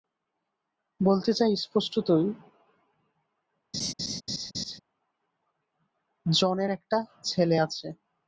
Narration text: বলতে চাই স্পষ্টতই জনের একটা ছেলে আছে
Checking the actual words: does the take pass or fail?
pass